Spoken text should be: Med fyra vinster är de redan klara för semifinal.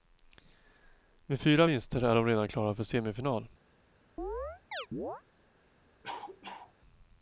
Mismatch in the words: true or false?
false